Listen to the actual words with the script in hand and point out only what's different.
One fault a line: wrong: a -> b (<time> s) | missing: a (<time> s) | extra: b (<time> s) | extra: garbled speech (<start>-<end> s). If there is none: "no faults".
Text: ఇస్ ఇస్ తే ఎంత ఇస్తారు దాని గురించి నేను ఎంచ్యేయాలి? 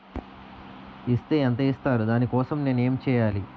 missing: ఇస్ (1.2 s)
wrong: గురించి -> కోసం (2.3 s)